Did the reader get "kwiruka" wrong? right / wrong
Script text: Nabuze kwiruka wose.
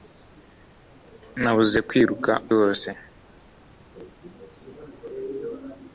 right